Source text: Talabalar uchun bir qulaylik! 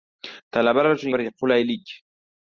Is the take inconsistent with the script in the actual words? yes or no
no